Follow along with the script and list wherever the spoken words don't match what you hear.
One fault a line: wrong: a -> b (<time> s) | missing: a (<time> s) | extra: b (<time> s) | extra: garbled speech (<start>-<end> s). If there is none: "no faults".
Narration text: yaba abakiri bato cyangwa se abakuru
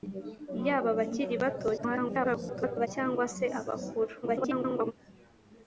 extra: garbled speech (1.8-2.9 s)
extra: garbled speech (4.2-4.9 s)